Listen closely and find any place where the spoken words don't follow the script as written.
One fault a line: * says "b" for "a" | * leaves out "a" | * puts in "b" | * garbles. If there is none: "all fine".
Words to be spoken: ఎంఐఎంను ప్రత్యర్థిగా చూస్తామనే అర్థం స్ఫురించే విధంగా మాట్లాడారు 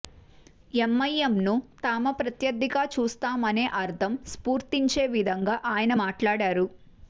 * puts in "తామ"
* puts in "ఆయన"